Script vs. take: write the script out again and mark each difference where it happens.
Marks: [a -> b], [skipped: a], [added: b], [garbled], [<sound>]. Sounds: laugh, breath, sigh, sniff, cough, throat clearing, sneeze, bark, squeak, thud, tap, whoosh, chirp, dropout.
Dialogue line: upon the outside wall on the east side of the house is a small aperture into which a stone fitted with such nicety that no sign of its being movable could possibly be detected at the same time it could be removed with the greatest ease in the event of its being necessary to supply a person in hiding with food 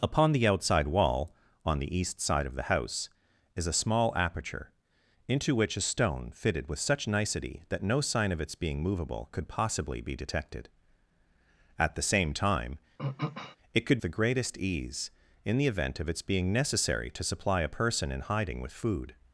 upon the outside wall on the east side of the house is a small aperture into which a stone fitted with such nicety that no sign of its being movable could possibly be detected at the same time [throat clearing] it could [skipped: be removed with] the greatest ease in the event of its being necessary to supply a person in hiding with food